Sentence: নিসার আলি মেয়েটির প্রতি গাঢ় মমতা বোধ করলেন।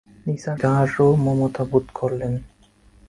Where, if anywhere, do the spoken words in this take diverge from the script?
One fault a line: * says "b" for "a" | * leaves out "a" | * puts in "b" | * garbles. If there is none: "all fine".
* leaves out "আলি মেয়েটির প্রতি"